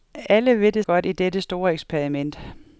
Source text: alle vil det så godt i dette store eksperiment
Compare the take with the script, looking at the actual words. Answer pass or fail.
fail